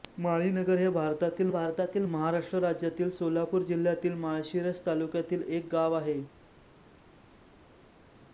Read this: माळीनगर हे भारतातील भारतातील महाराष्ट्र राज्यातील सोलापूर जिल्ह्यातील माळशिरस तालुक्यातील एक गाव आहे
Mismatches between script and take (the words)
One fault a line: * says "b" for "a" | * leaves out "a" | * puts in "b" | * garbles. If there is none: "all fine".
all fine